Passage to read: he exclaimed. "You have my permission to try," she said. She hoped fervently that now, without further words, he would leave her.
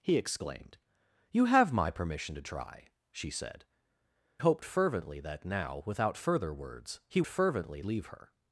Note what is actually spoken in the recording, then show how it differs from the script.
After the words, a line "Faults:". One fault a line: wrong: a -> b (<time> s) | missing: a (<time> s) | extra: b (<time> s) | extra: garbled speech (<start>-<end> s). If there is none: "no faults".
he exclaimed. "You have my permission to try," she said. Hoped fervently that now, without further words, he fervently leave her.
Faults:
missing: She (3.6 s)
wrong: would -> fervently (7.2 s)